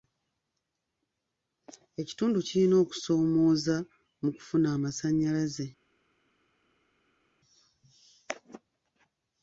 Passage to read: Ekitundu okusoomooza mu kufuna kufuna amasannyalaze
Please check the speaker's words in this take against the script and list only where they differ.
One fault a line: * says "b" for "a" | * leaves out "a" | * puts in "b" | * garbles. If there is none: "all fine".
* puts in "kirina"
* leaves out "kufuna"